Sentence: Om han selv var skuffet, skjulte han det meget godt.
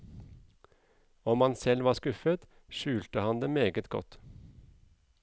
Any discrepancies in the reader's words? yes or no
no